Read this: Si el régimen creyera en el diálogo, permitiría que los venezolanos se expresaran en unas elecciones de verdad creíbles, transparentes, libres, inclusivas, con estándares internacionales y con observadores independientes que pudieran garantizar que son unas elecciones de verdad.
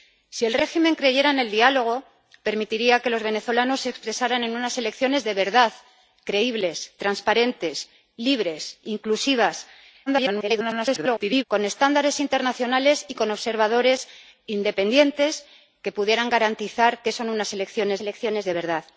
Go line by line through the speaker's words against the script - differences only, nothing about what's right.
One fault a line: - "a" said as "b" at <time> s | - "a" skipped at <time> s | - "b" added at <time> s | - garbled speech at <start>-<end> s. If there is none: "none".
- garbled speech at 10.1-11.4 s
- "elecciones" added at 18.0 s